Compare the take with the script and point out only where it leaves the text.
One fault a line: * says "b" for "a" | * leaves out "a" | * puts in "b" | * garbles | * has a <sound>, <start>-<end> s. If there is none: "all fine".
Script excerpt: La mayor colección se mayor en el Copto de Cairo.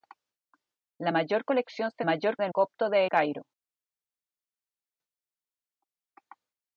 all fine